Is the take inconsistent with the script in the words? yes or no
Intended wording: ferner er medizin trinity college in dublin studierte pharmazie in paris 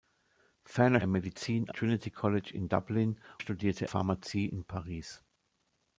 no